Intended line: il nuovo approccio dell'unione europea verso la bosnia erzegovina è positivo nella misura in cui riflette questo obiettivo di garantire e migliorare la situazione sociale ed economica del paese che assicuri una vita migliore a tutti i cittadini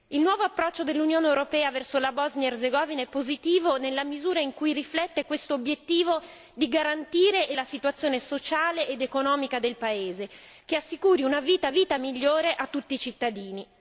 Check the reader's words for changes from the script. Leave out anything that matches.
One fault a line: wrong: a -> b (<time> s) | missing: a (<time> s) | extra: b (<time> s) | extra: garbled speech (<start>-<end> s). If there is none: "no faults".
missing: migliorare (7.5 s)
extra: vita (11.7 s)